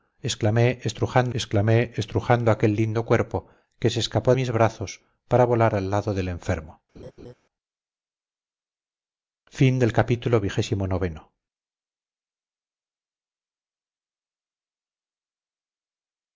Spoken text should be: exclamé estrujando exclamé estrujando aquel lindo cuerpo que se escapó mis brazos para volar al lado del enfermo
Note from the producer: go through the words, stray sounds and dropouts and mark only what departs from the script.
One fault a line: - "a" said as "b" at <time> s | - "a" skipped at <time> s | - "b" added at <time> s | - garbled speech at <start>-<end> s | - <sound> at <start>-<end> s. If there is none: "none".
- laugh at 7.0-7.3 s